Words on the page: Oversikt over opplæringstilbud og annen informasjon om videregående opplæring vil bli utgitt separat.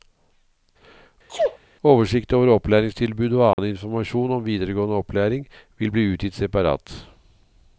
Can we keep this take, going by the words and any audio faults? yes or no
no